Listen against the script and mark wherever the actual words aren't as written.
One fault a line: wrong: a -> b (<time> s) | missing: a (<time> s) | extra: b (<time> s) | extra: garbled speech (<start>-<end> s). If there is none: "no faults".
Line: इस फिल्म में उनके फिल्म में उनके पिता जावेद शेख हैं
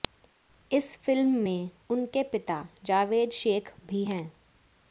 missing: फिल्म में उनके (2.2 s)
extra: भी (3.9 s)